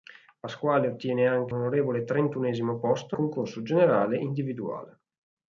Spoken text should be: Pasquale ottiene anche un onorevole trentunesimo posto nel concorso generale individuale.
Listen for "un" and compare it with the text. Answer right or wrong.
wrong